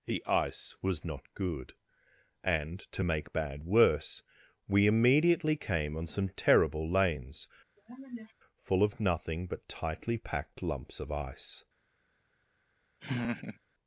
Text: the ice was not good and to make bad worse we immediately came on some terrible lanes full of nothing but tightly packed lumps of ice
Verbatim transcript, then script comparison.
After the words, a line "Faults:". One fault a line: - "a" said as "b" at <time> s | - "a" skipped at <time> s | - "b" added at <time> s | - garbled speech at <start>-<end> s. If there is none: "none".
the ice was not good and to make bad worse we immediately came on some terrible lanes full of nothing but tightly packed lumps of ice
Faults:
none